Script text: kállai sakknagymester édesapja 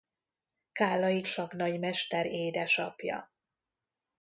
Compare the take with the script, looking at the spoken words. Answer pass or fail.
pass